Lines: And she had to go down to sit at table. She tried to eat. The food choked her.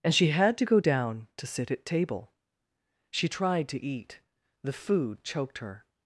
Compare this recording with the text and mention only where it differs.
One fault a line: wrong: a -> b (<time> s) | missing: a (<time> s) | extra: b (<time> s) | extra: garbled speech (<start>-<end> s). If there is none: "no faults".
no faults